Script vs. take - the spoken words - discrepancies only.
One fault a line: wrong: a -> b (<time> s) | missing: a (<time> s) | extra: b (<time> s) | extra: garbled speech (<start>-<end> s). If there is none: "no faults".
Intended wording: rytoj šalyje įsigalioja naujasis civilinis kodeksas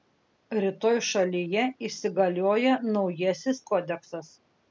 missing: civilinis (3.6 s)